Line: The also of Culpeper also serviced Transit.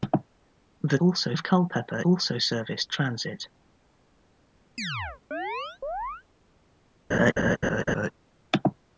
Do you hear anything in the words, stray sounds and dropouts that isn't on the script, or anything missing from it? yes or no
yes